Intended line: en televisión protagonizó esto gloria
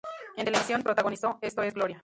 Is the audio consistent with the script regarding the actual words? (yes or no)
no